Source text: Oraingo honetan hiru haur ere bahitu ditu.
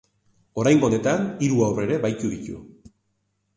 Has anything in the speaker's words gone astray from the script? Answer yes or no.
no